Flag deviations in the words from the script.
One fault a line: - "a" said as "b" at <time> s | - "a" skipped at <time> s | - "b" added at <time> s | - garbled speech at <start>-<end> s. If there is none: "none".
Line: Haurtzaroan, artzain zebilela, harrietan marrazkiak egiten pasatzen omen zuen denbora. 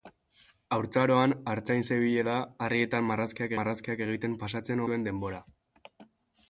- "marrazkiak" added at 3.6 s
- "omen" skipped at 4.8 s